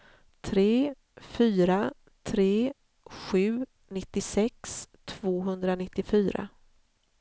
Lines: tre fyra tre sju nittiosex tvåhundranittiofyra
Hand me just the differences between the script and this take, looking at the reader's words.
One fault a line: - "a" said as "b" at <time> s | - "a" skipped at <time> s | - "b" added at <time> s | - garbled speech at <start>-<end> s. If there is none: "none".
none